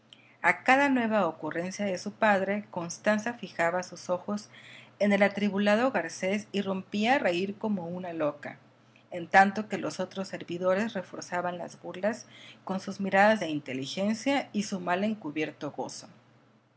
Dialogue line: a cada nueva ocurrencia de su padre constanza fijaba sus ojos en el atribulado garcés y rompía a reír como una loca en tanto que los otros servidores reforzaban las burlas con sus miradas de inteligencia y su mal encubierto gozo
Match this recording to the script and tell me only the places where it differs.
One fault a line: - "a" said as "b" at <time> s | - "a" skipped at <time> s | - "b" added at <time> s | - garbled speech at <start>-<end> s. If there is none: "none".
none